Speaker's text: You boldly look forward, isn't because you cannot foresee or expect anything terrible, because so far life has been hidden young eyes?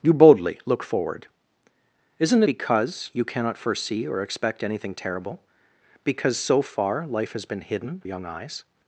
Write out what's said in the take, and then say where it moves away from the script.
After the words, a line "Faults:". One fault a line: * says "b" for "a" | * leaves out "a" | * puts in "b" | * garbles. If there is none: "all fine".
You boldly look forward, isn't because you cannot foresee or expect anything terrible, because so far life has been hidden young eyes?
Faults:
all fine